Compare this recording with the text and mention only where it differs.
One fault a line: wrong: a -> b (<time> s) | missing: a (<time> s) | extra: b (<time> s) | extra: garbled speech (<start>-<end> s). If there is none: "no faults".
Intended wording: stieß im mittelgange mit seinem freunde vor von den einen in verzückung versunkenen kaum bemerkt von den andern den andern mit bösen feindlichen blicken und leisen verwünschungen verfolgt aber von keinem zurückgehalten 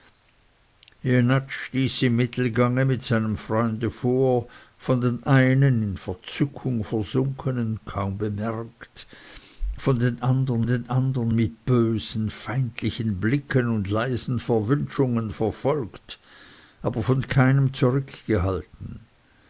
no faults